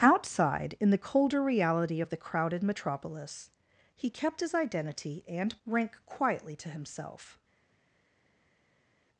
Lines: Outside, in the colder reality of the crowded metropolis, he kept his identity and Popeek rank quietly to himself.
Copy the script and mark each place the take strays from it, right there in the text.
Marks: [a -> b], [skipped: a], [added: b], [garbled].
Outside, in the colder reality of the crowded metropolis, he kept his identity and [skipped: Popeek] rank quietly to himself.